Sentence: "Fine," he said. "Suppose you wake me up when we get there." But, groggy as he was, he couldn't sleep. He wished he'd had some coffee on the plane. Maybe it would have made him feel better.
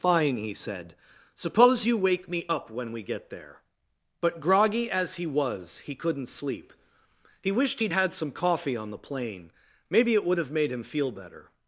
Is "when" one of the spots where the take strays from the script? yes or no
no